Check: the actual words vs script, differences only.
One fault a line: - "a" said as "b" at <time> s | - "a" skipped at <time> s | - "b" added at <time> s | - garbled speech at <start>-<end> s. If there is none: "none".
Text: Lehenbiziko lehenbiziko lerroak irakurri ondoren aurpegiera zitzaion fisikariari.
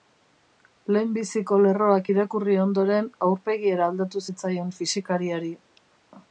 - "lehenbiziko" skipped at 1.6 s
- "aldatu" added at 3.9 s